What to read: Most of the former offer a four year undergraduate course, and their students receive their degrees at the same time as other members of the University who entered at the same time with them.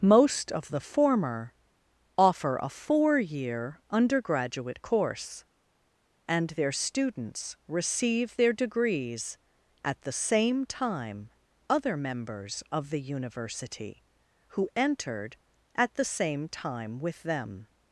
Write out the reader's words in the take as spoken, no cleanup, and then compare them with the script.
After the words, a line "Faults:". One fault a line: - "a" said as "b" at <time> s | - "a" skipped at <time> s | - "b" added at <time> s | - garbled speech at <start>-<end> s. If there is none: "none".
Most of the former offer a four year undergraduate course, and their students receive their degrees at the same time other members of the University who entered at the same time with them.
Faults:
- "as" skipped at 11.3 s